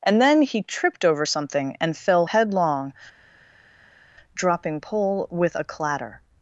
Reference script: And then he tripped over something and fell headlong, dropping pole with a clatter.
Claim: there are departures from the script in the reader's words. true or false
false